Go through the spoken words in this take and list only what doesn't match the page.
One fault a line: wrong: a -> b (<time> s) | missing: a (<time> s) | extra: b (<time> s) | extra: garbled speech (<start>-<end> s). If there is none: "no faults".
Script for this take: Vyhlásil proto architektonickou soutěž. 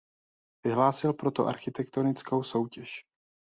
no faults